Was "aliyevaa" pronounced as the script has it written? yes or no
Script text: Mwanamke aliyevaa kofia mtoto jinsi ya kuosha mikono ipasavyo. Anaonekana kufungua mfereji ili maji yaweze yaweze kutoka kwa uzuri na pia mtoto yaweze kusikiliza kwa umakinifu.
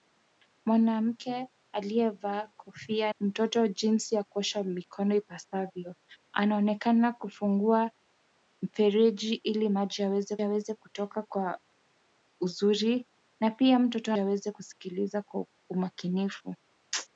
yes